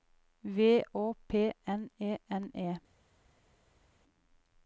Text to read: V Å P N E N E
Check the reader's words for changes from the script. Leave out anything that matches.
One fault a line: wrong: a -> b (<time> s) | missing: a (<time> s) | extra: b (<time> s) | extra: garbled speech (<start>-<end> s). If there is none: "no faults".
no faults